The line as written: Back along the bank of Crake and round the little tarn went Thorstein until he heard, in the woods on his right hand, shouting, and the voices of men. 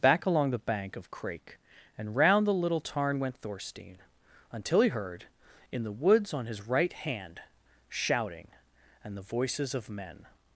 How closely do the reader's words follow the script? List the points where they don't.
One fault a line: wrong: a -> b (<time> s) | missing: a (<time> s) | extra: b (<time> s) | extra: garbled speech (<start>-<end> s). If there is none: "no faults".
no faults